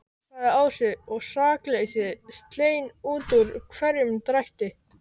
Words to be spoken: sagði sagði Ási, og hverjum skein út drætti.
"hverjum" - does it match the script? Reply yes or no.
no